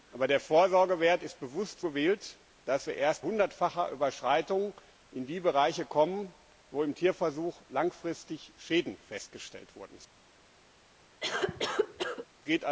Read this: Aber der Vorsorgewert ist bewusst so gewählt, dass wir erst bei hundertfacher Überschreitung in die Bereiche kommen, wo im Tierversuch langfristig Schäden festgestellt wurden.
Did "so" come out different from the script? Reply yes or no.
yes